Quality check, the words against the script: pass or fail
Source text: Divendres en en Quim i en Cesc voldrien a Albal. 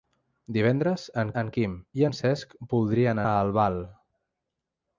pass